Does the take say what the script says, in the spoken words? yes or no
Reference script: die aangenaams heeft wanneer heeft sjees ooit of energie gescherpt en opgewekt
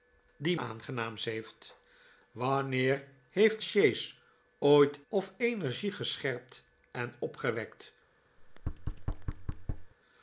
yes